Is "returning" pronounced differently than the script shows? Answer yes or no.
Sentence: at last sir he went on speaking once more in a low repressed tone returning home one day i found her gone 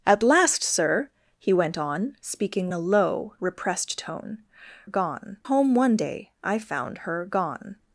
yes